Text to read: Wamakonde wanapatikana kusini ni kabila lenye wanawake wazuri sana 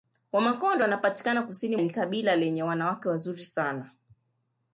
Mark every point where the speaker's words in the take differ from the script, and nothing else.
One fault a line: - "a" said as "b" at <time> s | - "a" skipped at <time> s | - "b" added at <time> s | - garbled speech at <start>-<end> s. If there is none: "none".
none